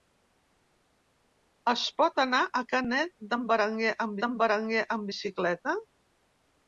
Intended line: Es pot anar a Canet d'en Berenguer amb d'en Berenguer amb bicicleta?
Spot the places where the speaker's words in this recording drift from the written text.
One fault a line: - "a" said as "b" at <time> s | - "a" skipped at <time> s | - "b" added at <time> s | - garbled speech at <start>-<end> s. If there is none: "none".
none